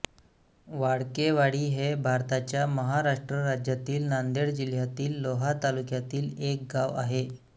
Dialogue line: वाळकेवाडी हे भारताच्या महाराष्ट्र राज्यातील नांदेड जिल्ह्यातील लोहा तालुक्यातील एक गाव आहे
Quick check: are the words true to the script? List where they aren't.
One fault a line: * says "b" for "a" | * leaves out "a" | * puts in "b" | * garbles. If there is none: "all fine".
all fine